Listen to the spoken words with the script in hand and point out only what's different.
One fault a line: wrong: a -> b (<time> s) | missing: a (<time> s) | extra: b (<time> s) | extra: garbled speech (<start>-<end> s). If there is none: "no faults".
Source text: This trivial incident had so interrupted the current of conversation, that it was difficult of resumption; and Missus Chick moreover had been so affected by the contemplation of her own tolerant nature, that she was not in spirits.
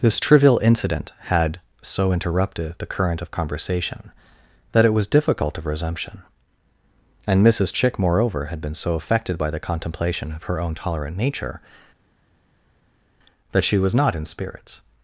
no faults